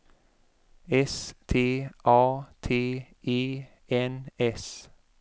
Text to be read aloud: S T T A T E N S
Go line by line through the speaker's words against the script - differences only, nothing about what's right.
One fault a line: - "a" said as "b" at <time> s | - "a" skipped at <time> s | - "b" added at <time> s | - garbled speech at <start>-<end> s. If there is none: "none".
- "T" skipped at 1.9 s